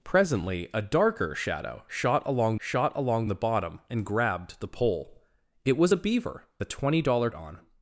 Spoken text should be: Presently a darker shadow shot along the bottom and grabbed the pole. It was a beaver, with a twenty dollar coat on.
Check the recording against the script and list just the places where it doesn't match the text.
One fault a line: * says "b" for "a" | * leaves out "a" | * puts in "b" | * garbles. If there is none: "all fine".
* puts in "shot along"
* leaves out "with"
* leaves out "coat"